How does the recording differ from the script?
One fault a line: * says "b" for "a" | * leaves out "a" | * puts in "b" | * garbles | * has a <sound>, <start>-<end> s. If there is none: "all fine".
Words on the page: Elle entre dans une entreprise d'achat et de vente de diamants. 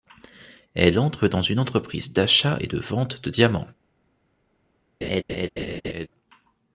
* has a laugh, 5.0-6.1 s